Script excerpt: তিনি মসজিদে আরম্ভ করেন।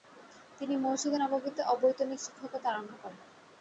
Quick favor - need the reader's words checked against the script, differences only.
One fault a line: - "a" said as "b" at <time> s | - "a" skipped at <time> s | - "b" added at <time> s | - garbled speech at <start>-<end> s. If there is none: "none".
- "নববীতে অবৈতনিক শিক্ষকতা" added at 1.2 s